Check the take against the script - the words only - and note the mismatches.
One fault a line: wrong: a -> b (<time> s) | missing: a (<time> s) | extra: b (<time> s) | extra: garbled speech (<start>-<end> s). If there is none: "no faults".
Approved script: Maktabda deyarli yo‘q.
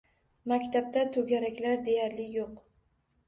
extra: to‘garaklar (1.2 s)